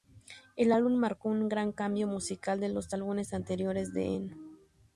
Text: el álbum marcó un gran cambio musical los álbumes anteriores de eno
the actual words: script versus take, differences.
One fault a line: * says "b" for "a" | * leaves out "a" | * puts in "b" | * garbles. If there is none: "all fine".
* puts in "de"